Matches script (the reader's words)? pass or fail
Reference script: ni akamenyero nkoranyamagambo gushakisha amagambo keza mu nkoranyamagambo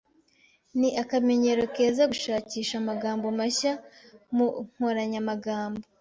fail